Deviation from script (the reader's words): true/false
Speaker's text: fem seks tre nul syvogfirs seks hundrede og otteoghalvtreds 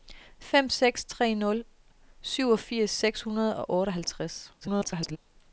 true